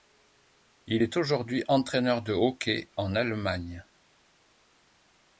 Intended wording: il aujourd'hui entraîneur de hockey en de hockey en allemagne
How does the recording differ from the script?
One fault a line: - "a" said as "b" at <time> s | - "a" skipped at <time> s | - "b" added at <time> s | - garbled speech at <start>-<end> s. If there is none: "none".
- "est" added at 1.0 s
- "de hockey en" skipped at 3.2 s